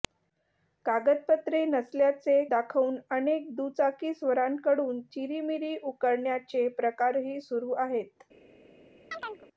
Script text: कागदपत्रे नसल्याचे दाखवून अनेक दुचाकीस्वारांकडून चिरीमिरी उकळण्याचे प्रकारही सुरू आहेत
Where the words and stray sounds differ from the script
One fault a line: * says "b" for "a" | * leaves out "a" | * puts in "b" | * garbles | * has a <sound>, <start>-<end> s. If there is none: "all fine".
* has a chirp, 9.1-9.5 s